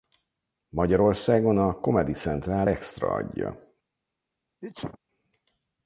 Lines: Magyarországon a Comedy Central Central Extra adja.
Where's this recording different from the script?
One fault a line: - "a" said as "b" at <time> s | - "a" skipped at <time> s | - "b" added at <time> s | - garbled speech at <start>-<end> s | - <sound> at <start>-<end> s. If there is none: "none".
- "Central" skipped at 2.7 s
- sneeze at 4.6-5.0 s